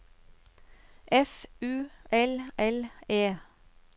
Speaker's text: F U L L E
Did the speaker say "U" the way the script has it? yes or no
yes